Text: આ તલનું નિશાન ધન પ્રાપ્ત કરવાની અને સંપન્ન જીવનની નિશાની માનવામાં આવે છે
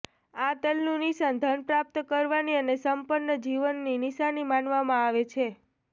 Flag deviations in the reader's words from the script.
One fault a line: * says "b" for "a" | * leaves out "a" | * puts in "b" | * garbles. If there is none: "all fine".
all fine